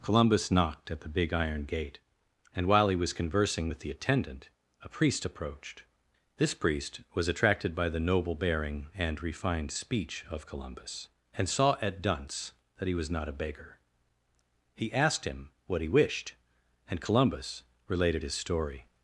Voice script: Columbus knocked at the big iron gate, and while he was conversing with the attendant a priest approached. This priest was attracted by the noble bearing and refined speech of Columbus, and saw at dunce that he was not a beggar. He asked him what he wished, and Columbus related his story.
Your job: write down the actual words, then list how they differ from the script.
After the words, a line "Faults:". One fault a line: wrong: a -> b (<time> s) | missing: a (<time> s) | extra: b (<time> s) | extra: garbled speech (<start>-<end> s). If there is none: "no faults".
Columbus knocked at the big iron gate, and while he was conversing with the attendant a priest approached. This priest was attracted by the noble bearing and refined speech of Columbus, and saw at dunce that he was not a beggar. He asked him what he wished, and Columbus related his story.
Faults:
no faults